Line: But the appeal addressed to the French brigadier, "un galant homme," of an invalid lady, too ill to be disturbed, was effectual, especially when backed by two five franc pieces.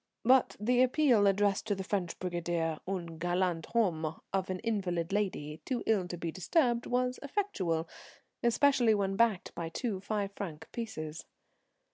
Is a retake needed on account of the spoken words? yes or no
no